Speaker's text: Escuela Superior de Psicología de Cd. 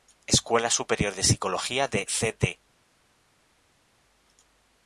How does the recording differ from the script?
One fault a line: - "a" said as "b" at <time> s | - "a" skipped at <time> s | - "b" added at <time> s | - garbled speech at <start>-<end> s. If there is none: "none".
none